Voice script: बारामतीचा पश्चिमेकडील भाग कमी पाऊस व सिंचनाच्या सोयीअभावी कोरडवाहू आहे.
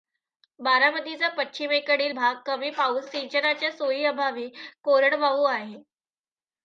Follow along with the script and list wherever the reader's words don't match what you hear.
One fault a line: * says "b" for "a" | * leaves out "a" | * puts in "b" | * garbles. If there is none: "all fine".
* leaves out "व"